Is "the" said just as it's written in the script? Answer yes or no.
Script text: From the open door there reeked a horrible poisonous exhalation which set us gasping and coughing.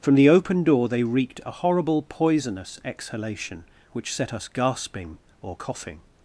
yes